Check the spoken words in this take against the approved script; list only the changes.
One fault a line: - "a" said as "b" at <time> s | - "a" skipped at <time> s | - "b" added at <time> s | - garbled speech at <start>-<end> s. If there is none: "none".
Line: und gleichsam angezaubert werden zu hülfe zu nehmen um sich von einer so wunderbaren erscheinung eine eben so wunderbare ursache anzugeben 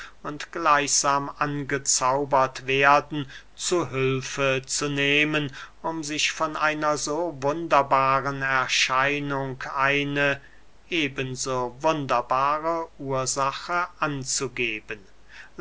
none